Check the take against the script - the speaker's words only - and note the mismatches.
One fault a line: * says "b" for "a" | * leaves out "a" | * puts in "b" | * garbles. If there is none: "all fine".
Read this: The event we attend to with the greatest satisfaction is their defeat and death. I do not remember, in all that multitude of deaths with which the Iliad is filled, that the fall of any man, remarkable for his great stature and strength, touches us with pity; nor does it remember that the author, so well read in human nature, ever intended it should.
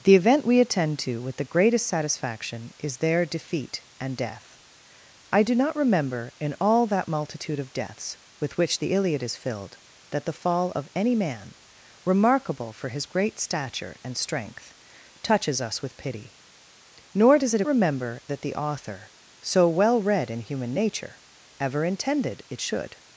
all fine